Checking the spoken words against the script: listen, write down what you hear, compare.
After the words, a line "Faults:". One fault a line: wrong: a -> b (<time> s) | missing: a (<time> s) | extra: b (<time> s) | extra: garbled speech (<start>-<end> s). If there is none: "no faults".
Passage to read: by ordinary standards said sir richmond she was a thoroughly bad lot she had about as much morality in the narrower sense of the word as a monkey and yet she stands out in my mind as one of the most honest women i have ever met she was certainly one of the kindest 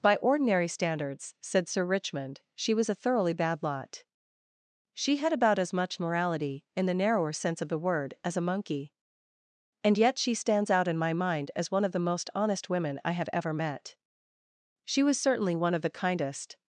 by ordinary standards said sir richmond she was a thoroughly bad lot she had about as much morality in the narrower sense of the word as a monkey and yet she stands out in my mind as one of the most honest women i have ever met she was certainly one of the kindest
Faults:
no faults